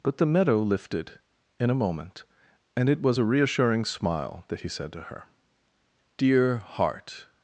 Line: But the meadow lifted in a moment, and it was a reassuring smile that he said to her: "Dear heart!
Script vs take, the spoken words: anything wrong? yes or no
no